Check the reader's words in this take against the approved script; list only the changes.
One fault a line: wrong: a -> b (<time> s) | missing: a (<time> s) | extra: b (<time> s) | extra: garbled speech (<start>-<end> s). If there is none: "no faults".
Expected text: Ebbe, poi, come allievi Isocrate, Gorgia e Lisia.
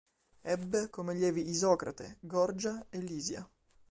missing: poi (0.9 s)